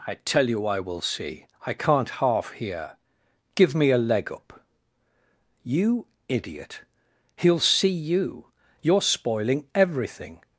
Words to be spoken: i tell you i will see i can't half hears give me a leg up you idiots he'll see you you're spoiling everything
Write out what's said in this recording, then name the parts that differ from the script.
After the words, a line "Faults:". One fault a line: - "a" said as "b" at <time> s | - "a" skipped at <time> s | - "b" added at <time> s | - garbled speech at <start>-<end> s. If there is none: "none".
i tell you i will see i can't half hear give me a leg up you idiot he'll see you you're spoiling everything
Faults:
- "hears" said as "hear" at 2.5 s
- "idiots" said as "idiot" at 6.3 s